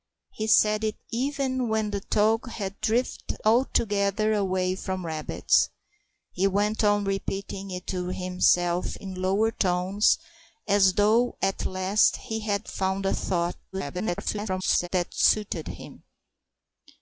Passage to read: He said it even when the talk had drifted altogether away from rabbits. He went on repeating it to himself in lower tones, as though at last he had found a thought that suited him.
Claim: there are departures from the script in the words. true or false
true